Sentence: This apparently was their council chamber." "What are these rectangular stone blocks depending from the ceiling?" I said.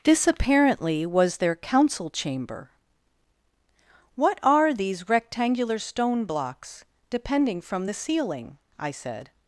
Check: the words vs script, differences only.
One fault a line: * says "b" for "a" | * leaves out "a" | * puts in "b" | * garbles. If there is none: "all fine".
all fine